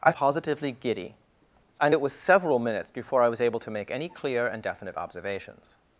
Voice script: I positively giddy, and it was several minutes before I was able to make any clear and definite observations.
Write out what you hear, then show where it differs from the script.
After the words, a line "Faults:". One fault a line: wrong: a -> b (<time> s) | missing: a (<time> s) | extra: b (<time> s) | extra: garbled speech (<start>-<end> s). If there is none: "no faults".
I positively giddy, and it was several minutes before I was able to make any clear and definite observations.
Faults:
no faults